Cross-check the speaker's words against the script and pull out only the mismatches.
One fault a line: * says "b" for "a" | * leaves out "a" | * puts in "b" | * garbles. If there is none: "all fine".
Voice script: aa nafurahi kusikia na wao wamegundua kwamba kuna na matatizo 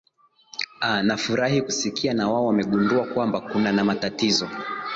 all fine